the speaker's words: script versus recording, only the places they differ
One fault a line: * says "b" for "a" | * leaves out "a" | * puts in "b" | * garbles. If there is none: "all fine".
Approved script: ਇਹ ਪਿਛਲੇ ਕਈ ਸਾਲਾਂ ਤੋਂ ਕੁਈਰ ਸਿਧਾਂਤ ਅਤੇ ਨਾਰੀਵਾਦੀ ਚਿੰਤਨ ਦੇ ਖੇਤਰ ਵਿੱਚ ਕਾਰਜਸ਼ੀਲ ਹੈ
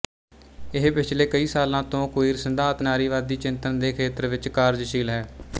* leaves out "ਅਤੇ"